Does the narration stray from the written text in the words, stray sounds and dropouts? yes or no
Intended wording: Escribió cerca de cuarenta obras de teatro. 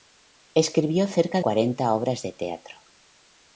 yes